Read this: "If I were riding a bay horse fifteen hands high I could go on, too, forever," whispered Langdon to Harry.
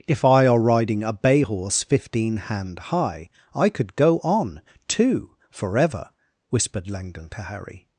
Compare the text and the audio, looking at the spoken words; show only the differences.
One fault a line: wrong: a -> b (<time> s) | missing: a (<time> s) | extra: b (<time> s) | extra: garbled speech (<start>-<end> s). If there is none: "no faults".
wrong: were -> are (0.5 s)
wrong: hands -> hand (2.4 s)